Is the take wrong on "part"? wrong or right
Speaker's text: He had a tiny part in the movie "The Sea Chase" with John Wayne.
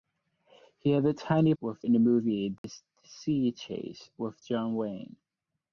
wrong